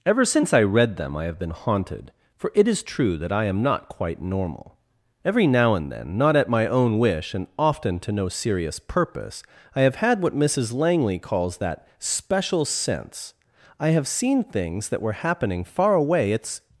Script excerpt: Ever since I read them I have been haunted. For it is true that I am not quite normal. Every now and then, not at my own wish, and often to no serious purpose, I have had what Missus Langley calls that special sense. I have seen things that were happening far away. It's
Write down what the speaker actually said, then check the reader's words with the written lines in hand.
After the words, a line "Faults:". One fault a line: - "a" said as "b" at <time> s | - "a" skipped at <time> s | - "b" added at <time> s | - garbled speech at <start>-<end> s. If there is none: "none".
Ever since I read them I have been haunted. For it is true that I am not quite normal. Every now and then, not at my own wish, and often to no serious purpose, I have had what Missus Langley calls that special sense. I have seen things that were happening far away. It's
Faults:
none